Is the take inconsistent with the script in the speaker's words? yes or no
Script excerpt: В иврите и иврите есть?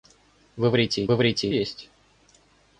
no